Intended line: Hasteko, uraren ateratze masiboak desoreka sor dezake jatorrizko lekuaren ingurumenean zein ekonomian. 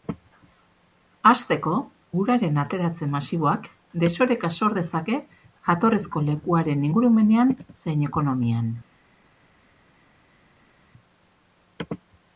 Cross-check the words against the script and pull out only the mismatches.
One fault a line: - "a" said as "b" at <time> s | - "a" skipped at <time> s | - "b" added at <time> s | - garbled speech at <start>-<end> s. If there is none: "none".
none